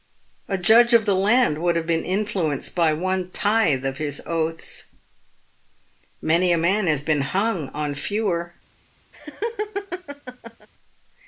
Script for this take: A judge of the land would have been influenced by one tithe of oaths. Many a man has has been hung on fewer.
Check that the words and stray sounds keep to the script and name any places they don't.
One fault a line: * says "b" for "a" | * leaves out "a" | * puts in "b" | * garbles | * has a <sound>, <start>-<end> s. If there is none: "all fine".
* puts in "his"
* leaves out "has"
* has a laugh, 9.1-10.7 s